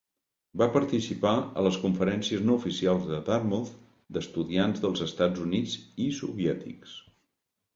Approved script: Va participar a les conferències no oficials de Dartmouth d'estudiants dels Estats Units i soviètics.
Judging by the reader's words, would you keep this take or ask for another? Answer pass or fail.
pass